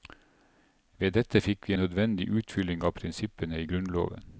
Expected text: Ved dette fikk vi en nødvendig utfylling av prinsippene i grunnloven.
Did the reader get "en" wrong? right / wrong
wrong